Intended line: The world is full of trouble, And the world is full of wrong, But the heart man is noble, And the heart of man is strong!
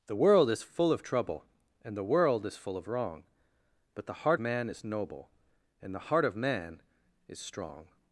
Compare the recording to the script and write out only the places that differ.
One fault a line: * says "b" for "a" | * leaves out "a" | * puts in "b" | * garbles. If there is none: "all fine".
all fine